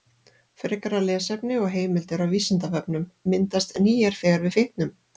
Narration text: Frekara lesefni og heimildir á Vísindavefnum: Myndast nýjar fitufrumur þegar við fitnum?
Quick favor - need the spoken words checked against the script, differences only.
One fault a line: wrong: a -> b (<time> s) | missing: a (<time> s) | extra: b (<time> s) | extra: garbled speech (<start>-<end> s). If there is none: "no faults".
missing: fitufrumur (4.2 s)